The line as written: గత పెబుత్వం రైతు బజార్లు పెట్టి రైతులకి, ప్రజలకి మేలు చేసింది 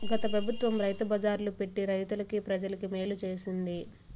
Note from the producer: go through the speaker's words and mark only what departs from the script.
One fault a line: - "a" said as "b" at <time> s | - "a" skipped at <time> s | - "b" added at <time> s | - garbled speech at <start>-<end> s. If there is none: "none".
none